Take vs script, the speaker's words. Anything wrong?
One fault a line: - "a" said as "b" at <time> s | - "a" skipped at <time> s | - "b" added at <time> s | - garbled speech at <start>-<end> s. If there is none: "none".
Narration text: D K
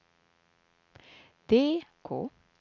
none